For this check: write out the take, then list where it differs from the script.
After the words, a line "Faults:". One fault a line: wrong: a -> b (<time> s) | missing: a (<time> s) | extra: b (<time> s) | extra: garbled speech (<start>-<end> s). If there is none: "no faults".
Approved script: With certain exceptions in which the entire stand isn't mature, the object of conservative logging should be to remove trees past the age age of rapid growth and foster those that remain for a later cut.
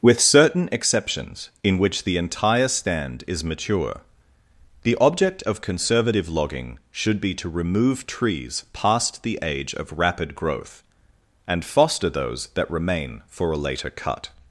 With certain exceptions in which the entire stand is mature, the object of conservative logging should be to remove trees past the age of rapid growth and foster those that remain for a later cut.
Faults:
wrong: isn't -> is (3.3 s)
missing: age (9.8 s)